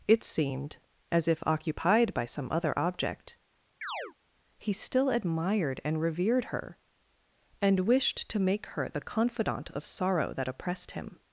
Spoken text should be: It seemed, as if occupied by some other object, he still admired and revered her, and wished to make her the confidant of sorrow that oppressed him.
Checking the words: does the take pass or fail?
pass